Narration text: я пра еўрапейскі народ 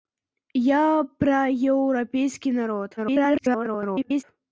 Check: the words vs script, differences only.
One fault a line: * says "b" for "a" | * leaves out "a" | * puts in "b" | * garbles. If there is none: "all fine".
* garbles